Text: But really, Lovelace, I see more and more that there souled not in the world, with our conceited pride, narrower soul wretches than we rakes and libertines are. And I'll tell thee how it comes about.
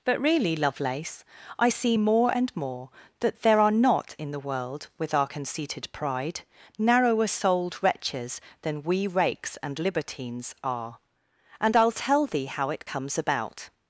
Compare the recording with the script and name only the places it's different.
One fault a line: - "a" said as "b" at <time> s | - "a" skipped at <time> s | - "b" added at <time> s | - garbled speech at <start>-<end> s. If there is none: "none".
- "souled" said as "are" at 3.6 s
- "soul" said as "souled" at 7.3 s